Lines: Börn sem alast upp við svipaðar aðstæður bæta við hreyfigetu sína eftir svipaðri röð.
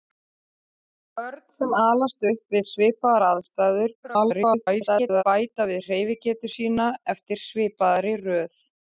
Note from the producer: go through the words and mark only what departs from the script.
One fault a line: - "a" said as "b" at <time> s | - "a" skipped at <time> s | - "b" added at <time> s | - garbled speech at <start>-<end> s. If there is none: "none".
- garbled speech at 4.0-5.2 s